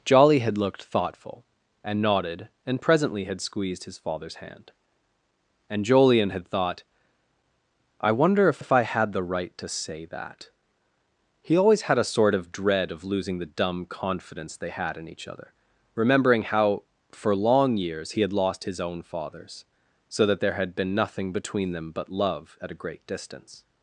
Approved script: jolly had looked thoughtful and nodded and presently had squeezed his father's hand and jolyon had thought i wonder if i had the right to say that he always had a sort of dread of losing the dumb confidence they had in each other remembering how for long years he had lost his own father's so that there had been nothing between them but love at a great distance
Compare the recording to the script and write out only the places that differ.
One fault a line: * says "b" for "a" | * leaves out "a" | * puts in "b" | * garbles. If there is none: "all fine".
* puts in "if"